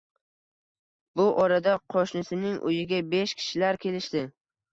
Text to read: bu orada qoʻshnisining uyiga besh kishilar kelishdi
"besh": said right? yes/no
yes